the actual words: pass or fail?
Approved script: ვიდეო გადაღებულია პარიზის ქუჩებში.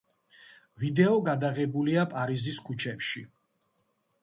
pass